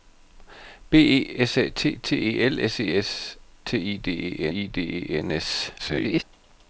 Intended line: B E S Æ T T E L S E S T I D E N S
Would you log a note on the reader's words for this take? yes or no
yes